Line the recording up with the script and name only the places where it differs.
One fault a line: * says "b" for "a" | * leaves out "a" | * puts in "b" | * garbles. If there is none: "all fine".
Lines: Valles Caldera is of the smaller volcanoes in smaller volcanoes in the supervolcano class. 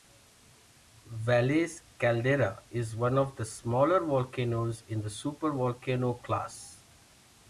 * puts in "one"
* leaves out "smaller volcanoes in"